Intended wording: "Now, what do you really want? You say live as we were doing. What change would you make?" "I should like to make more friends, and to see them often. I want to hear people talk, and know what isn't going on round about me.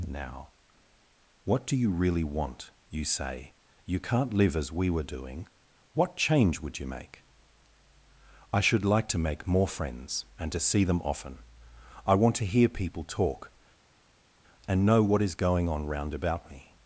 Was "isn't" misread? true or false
true